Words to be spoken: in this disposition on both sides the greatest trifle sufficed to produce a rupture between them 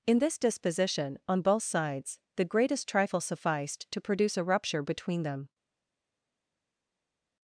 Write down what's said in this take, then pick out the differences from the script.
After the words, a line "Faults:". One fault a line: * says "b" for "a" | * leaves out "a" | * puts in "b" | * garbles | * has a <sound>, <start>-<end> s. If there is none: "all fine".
in this disposition on both sides the greatest trifle sufficed to produce a rupture between them
Faults:
all fine